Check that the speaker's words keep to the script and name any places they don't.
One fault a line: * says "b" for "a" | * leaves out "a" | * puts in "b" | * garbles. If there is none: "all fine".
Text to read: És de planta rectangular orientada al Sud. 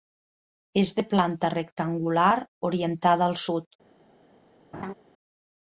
all fine